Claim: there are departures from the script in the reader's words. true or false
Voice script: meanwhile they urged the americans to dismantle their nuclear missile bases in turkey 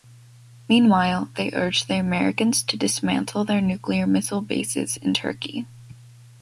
false